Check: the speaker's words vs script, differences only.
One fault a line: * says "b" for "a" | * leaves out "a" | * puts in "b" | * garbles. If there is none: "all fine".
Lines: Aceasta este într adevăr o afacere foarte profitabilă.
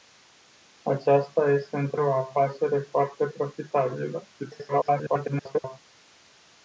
* leaves out "adevăr"
* garbles